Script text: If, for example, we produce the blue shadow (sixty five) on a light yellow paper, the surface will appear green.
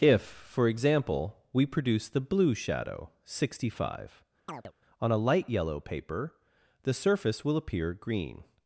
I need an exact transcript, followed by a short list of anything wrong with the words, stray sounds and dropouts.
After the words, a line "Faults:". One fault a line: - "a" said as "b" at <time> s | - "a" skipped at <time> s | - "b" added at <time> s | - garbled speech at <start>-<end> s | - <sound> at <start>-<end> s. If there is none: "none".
If, for example, we produce the blue shadow (sixty five) on a light yellow paper, the surface will appear green.
Faults:
- chirp at 4.5-4.7 s